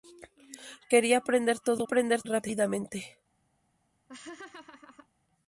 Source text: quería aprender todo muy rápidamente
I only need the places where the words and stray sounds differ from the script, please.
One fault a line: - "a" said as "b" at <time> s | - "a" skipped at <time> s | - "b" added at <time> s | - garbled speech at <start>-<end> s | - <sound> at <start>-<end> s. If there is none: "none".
- "muy" said as "aprender" at 1.8 s
- laugh at 4.1-5.1 s